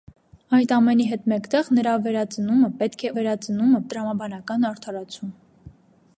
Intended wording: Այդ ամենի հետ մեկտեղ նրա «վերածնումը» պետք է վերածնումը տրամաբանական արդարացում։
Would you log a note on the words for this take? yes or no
no